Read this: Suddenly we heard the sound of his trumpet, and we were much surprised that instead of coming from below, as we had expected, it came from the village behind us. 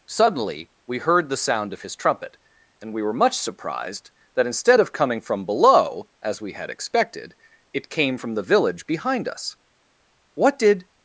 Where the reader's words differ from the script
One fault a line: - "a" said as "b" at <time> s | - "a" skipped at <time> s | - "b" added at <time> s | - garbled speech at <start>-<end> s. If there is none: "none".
- "What did" added at 10.3 s